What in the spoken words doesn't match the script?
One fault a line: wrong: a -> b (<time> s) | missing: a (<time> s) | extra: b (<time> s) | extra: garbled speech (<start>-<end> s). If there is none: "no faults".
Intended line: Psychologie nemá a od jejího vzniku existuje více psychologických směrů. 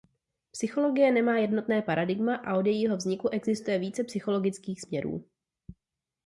extra: jednotné paradigma (1.4 s)